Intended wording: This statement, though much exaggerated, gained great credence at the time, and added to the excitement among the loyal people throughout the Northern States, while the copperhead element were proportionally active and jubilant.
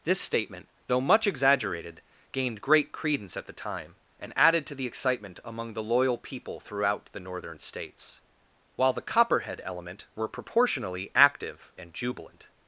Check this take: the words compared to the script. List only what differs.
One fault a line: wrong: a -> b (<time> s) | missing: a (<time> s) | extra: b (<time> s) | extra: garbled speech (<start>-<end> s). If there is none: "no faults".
no faults